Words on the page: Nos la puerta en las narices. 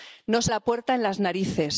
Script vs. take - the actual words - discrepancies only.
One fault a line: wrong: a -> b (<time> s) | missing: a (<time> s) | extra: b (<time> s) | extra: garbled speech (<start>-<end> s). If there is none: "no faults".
no faults